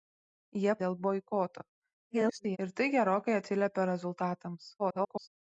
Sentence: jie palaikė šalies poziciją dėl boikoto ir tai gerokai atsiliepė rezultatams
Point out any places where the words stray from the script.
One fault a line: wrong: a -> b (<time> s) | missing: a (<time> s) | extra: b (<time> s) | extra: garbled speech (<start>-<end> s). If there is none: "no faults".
missing: palaikė šalies poziciją (0.7 s)
extra: garbled speech (2.1-2.6 s)
extra: garbled speech (4.8-5.3 s)